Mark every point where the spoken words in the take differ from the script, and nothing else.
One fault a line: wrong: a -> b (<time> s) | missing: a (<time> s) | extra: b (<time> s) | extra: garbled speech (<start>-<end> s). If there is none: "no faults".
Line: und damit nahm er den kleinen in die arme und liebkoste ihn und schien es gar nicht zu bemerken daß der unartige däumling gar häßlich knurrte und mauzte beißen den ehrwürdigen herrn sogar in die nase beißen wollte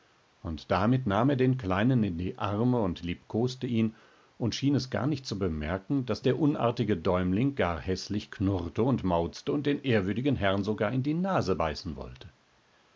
wrong: beißen -> und (9.5 s)